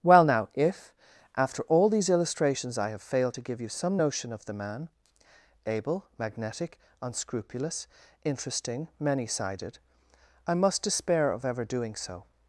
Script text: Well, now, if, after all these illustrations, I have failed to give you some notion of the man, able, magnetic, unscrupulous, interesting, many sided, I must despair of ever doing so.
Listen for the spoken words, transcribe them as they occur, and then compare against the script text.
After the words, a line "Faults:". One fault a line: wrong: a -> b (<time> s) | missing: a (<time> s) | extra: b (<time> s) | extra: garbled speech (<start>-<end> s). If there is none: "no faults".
Well, now, if, after all these illustrations, I have failed to give you some notion of the man, able, magnetic, unscrupulous, interesting, many sided, I must despair of ever doing so.
Faults:
no faults